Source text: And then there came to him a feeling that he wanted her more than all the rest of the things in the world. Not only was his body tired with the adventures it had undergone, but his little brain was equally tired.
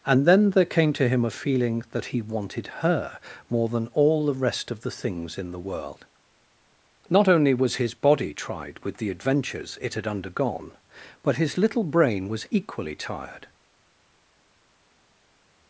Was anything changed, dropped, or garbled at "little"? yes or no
no